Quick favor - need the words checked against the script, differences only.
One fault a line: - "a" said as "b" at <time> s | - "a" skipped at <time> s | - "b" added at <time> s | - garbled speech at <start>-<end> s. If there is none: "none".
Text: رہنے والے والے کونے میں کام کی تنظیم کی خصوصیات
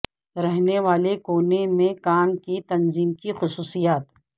- "والے" skipped at 1.1 s